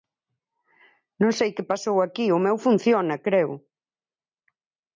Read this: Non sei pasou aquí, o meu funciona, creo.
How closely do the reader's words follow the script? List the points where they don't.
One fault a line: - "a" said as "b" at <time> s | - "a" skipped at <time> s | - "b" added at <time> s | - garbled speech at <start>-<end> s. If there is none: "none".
- "que" added at 1.6 s